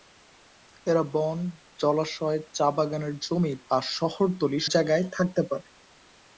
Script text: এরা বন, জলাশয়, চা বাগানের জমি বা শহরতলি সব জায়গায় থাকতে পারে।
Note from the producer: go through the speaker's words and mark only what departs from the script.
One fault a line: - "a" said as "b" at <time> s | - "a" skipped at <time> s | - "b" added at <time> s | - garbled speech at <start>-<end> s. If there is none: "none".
- "সব" skipped at 4.6 s